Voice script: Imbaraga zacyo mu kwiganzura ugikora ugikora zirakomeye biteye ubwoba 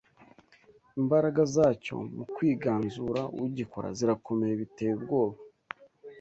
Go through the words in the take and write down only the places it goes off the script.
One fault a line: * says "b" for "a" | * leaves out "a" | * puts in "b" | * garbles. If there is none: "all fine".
* leaves out "ugikora"